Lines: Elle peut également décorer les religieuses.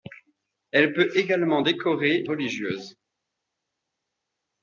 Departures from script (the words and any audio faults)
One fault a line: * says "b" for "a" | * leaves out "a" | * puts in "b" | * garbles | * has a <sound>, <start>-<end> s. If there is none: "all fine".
* leaves out "les"